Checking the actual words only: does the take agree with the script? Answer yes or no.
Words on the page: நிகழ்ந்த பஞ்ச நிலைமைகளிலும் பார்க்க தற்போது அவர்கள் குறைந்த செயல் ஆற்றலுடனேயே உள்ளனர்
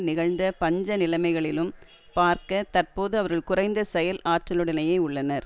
yes